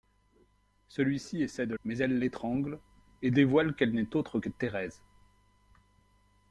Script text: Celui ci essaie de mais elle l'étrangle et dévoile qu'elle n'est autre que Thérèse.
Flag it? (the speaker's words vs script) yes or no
no